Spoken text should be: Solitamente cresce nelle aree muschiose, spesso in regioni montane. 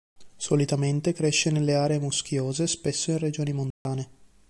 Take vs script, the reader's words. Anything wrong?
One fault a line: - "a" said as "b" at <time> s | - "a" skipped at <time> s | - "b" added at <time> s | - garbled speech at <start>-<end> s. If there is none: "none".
none